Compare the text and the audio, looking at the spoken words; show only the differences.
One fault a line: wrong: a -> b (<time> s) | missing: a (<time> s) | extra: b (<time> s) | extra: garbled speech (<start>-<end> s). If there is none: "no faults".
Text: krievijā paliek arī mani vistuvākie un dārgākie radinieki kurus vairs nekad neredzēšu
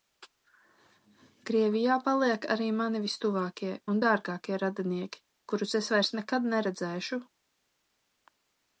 extra: es (5.8 s)